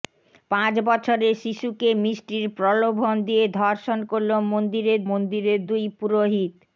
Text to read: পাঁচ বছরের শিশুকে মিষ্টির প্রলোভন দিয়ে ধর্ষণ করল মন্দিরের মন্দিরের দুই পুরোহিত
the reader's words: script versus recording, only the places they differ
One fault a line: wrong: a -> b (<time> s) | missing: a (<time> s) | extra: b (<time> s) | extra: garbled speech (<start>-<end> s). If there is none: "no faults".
no faults